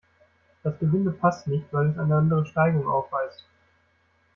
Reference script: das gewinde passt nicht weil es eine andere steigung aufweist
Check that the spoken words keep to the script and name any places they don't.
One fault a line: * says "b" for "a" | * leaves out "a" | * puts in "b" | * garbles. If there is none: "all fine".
all fine